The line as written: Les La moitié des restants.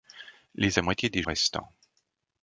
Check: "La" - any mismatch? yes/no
no